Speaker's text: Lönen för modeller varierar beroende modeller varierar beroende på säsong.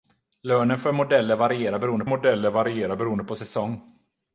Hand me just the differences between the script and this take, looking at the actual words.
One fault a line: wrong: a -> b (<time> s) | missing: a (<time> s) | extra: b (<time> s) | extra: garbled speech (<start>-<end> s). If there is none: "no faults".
no faults